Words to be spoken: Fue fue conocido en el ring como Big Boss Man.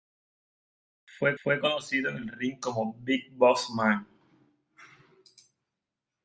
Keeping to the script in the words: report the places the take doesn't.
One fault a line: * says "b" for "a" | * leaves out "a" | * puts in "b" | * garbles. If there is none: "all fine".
all fine